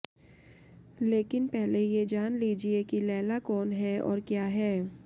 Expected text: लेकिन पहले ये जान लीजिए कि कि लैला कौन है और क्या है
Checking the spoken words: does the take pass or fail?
fail